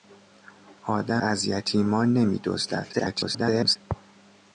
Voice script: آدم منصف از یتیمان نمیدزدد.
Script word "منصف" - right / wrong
wrong